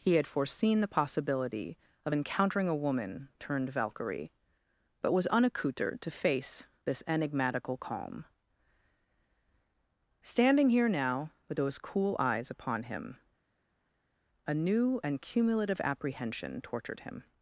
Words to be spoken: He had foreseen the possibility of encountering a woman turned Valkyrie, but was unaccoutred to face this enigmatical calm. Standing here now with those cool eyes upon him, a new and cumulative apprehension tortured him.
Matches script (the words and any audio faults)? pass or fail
pass